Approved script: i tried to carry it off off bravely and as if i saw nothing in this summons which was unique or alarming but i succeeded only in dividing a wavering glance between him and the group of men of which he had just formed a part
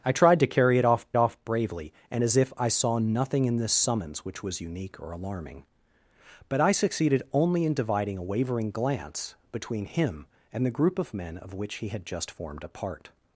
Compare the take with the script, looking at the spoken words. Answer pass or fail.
pass